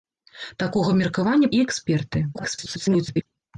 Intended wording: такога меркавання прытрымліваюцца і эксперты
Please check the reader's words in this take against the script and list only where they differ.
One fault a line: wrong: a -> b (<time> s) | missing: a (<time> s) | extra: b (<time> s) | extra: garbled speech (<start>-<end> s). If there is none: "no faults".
missing: прытрымліваюцца (1.5 s)
extra: garbled speech (2.3-3.3 s)